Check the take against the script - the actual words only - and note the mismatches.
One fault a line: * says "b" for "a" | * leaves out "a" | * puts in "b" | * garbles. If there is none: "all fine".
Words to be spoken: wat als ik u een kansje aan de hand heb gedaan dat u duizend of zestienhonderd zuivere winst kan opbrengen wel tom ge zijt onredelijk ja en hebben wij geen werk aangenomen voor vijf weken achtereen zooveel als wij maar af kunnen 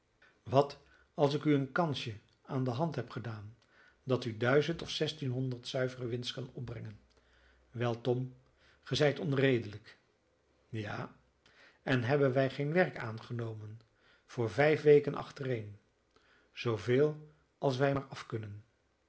all fine